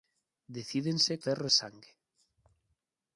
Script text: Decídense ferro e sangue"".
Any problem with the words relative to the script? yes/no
no